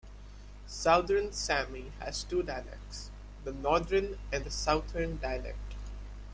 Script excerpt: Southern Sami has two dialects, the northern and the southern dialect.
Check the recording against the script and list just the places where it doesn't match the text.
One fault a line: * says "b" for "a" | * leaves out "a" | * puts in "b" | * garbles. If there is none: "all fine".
all fine